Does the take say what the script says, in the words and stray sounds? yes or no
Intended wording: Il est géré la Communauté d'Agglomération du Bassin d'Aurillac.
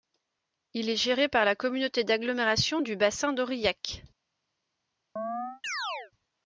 no